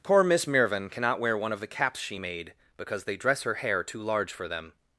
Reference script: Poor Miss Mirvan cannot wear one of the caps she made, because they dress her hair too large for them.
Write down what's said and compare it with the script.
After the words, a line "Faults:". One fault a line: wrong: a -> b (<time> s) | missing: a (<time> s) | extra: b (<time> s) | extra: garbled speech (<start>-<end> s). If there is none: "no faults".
Poor Miss Mirvan cannot wear one of the caps she made, because they dress her hair too large for them.
Faults:
no faults